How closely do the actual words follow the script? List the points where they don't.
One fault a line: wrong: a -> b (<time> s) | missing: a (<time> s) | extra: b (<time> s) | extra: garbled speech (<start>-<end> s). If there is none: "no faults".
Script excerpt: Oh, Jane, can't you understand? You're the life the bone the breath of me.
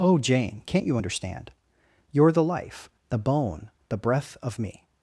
no faults